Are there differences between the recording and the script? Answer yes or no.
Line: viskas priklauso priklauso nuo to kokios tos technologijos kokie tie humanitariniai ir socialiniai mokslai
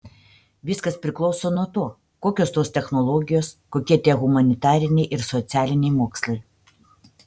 yes